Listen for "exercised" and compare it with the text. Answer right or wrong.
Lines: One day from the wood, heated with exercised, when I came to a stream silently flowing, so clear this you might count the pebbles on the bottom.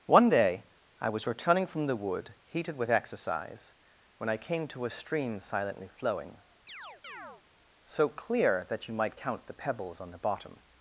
wrong